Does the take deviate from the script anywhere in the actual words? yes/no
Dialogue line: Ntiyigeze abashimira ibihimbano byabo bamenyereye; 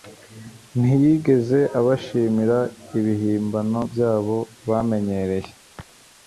no